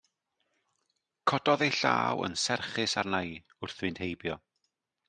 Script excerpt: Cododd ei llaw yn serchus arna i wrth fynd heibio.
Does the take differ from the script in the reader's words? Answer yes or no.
no